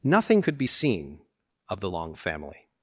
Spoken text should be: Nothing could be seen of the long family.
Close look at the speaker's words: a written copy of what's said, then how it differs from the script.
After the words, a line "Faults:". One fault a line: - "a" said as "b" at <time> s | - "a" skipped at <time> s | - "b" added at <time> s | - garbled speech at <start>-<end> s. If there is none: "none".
Nothing could be seen of the long family.
Faults:
none